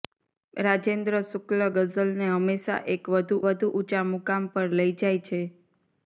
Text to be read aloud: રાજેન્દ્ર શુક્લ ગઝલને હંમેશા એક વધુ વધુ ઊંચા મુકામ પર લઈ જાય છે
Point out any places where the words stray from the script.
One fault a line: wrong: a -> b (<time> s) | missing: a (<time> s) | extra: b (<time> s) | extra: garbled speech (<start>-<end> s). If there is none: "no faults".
no faults